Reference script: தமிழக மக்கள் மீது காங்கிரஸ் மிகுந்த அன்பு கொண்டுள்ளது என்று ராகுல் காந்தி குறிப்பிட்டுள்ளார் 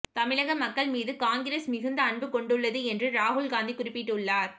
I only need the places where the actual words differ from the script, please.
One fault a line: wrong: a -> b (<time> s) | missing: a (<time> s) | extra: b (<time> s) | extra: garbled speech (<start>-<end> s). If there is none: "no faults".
no faults